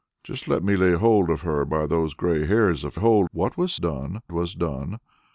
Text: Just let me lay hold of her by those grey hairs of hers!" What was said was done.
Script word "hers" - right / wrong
wrong